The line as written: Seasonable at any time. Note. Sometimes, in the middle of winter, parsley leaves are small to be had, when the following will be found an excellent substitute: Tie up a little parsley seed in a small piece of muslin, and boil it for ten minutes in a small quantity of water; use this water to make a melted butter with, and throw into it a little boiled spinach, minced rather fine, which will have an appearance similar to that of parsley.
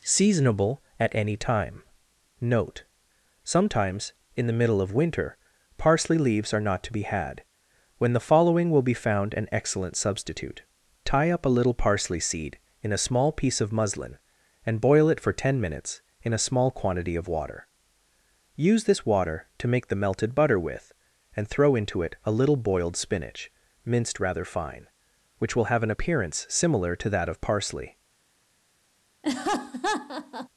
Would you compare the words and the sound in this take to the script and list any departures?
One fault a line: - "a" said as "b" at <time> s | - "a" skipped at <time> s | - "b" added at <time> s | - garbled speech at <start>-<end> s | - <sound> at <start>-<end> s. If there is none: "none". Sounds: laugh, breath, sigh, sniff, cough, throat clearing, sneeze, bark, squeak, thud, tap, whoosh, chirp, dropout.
- "small" said as "not" at 6.6 s
- "a" said as "the" at 19.9 s
- laugh at 29.2-30.5 s